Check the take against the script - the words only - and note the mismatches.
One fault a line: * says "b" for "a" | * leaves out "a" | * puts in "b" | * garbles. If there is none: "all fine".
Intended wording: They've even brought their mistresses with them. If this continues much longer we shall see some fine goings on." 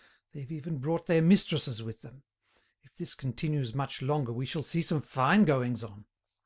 all fine